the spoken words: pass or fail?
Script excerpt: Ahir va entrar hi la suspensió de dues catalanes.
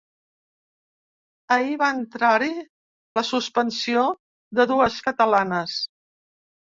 pass